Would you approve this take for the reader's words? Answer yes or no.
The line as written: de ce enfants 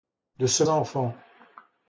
yes